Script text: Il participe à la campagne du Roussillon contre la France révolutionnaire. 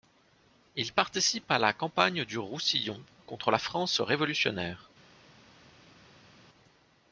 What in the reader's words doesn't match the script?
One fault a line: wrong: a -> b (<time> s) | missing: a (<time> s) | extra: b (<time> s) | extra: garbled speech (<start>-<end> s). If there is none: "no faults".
no faults